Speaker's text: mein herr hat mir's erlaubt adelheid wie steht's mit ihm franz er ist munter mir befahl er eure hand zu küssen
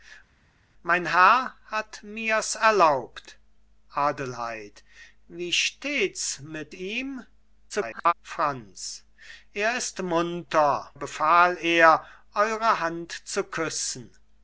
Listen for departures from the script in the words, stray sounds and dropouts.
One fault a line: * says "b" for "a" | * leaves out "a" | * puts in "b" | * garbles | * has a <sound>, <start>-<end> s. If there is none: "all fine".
* garbles
* leaves out "mir"